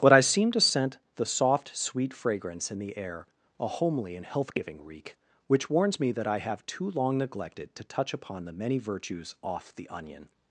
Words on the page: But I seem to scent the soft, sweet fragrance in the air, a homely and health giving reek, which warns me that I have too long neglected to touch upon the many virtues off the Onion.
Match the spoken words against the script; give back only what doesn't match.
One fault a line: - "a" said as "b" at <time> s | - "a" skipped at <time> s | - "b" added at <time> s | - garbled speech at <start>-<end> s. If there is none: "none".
none